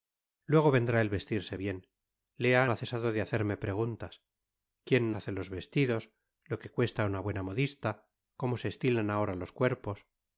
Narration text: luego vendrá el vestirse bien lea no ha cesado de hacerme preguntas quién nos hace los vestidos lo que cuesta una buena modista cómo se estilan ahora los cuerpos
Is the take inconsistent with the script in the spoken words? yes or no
yes